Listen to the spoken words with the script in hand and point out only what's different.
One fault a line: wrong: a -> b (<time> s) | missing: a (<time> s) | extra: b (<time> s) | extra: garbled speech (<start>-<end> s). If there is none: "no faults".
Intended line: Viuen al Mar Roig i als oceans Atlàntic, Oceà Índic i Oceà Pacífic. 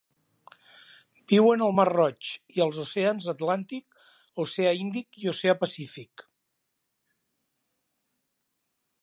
no faults